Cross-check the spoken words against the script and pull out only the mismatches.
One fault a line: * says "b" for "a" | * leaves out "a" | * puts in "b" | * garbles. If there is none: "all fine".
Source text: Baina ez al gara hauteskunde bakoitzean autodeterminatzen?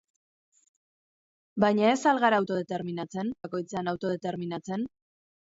* says "autodeterminatzen" for "hauteskunde"